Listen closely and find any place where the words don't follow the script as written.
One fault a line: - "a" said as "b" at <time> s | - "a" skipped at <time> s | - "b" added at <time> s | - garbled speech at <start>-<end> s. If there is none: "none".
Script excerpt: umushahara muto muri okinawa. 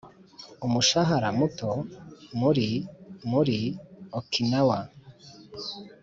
- "muri" added at 3.3 s